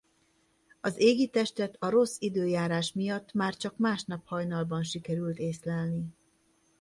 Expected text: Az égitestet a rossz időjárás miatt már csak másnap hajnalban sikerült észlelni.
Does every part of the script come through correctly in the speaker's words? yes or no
yes